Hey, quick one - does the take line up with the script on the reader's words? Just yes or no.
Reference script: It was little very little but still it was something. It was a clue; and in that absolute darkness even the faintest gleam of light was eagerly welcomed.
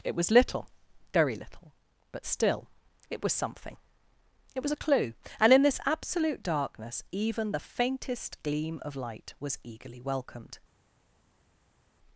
no